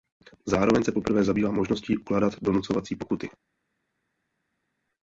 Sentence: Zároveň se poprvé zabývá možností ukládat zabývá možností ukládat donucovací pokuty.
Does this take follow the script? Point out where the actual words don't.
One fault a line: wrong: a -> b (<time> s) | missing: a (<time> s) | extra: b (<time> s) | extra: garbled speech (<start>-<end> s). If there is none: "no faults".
missing: zabývá možností ukládat (2.3 s)